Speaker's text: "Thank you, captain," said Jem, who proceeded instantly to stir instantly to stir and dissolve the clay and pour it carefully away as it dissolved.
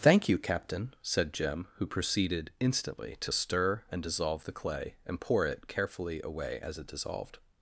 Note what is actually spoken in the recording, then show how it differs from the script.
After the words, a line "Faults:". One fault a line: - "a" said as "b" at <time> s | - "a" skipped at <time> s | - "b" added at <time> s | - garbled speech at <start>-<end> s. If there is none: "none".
"Thank you, captain," said Jem, who proceeded instantly to stir and dissolve the clay and pour it carefully away as it dissolved.
Faults:
- "instantly to stir" skipped at 3.8 s